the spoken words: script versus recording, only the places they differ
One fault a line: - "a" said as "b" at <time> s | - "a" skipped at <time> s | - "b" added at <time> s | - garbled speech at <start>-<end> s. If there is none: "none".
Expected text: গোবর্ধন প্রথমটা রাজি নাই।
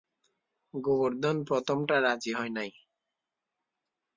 - "হয়" added at 2.3 s